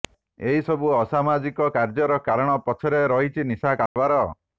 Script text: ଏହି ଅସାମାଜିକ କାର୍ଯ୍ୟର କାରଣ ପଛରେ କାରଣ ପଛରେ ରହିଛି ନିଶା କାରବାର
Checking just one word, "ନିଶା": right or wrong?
right